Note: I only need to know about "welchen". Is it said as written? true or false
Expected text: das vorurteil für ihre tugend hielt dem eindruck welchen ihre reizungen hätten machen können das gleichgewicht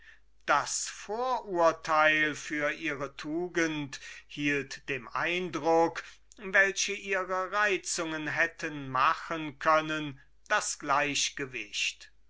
true